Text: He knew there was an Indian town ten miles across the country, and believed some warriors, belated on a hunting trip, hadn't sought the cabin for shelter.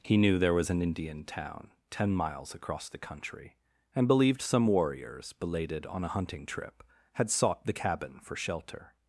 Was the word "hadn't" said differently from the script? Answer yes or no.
yes